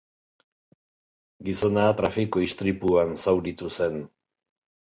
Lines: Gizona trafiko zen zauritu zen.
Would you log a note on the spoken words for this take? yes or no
yes